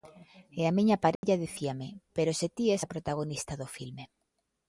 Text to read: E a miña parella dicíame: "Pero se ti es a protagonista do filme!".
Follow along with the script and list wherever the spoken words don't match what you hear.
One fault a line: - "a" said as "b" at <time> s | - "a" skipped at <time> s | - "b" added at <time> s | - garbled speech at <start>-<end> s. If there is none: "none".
none